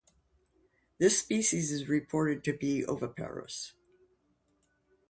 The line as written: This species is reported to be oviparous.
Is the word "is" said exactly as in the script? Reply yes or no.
yes